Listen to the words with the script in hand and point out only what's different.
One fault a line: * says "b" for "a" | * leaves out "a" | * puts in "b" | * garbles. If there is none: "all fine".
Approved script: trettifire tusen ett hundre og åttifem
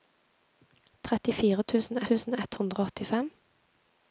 * puts in "tusen"